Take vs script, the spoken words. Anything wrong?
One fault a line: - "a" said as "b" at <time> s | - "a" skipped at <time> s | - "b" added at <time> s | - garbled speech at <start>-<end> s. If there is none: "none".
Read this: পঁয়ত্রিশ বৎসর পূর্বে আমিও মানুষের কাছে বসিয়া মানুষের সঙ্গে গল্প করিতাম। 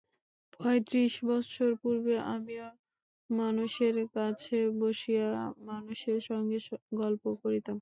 none